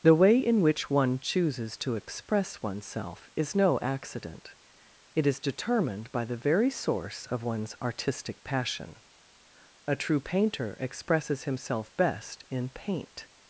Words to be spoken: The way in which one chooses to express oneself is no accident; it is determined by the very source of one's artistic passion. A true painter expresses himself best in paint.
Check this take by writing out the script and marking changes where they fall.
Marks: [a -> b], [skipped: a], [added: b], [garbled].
The way in which one chooses to express oneself is no accident; it is determined by the very source of one's artistic passion. A true painter expresses himself best in paint.